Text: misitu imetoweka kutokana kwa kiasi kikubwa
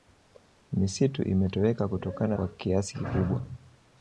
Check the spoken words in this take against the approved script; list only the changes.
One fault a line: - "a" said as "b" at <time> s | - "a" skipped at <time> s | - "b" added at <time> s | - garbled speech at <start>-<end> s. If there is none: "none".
none